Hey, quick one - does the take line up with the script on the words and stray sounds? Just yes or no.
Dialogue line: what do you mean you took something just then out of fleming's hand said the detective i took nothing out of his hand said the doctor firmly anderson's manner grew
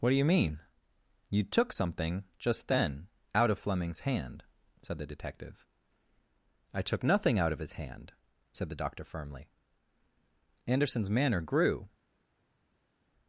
yes